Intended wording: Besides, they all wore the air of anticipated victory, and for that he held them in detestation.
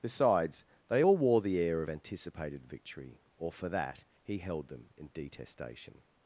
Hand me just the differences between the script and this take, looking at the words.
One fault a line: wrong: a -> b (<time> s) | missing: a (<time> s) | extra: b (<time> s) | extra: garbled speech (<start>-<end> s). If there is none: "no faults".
wrong: and -> or (3.4 s)